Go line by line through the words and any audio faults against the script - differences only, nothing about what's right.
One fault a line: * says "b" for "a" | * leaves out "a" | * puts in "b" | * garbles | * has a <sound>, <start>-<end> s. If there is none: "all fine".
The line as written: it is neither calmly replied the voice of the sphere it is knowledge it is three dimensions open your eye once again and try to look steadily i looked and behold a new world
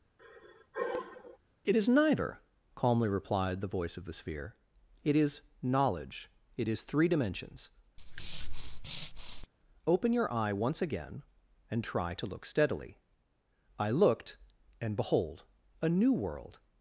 * has a sigh, 0.2-1.4 s
* has a breath, 8.0-9.5 s